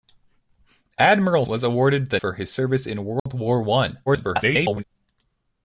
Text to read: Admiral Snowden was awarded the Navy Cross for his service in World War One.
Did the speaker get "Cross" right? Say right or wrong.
wrong